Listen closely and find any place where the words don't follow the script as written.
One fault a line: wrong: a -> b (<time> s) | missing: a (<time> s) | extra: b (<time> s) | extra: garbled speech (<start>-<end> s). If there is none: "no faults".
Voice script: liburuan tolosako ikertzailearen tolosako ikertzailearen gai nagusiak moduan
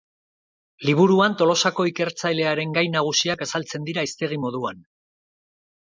wrong: tolosako ikertzailearen gai nagusiak -> gai nagusiak azaltzen dira hiztegi (2.8 s)